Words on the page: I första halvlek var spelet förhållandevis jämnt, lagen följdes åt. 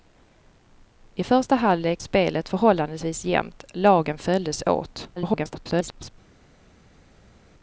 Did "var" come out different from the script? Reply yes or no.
yes